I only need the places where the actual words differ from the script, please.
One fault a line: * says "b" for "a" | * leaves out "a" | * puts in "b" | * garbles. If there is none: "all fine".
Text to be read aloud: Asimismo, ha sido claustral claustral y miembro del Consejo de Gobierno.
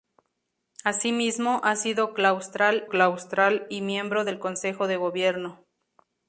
all fine